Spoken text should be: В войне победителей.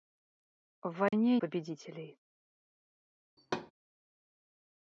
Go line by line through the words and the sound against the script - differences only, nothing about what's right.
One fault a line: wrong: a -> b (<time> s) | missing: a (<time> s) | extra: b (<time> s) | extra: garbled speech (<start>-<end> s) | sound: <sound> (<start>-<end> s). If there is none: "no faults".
sound: dropout (1.1-1.1 s)
sound: thud (3.4-3.7 s)